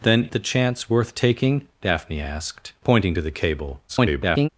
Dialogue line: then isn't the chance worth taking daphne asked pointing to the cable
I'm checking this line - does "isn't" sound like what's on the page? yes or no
no